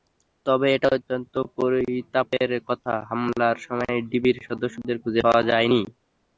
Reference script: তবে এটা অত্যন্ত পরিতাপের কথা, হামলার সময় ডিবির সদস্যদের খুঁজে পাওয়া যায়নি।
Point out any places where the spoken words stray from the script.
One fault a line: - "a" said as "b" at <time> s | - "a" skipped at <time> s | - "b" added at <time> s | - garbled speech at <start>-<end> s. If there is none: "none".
none